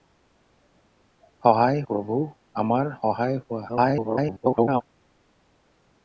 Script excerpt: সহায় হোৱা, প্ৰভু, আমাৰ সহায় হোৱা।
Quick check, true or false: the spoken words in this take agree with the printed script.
false